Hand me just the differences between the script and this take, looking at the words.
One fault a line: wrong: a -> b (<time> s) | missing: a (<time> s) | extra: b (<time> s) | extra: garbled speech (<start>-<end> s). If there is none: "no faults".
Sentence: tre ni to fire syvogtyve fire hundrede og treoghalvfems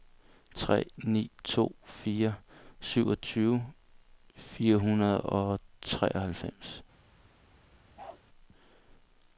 no faults